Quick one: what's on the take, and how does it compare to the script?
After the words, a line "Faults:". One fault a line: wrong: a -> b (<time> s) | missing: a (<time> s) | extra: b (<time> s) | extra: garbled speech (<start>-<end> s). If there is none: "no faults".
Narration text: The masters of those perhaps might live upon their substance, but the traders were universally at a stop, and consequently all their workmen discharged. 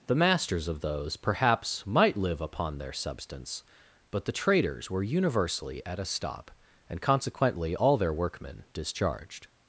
The masters of those perhaps might live upon their substance, but the traders were universally at a stop, and consequently all their workmen discharged.
Faults:
no faults